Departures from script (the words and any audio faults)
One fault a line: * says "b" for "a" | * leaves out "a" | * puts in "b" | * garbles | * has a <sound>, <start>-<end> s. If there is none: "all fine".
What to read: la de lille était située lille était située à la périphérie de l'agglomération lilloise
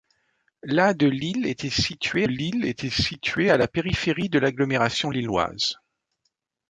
all fine